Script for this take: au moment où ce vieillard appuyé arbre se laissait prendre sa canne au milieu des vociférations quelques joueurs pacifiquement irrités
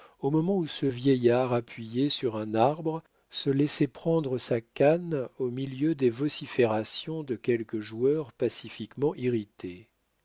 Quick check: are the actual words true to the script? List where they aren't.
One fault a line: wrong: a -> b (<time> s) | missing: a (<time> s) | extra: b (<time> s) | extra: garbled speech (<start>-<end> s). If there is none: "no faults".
extra: sur un (2.1 s)
extra: de (7.2 s)